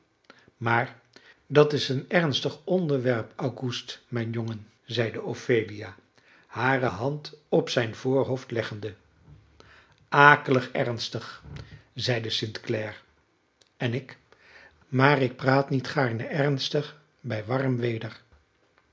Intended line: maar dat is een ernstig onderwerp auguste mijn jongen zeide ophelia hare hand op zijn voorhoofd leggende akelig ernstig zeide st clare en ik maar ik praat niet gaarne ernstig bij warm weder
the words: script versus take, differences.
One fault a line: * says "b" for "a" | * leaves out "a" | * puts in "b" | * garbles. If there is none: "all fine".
all fine